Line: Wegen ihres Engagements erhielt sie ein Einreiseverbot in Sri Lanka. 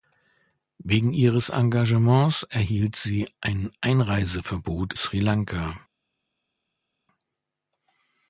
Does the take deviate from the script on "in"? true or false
true